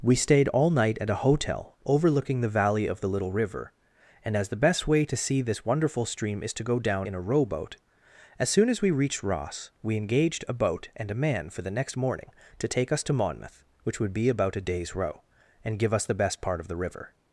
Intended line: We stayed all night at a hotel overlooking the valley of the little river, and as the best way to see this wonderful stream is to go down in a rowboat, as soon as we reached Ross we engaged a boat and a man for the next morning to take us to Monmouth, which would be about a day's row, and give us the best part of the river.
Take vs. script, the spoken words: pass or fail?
pass